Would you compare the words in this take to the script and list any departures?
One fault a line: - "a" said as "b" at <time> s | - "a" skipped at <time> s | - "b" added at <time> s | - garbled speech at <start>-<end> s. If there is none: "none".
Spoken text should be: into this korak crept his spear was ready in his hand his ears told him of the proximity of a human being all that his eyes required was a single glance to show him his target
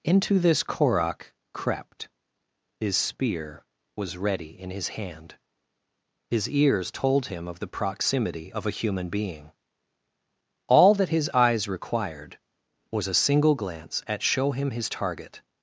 - "to" said as "at" at 14.1 s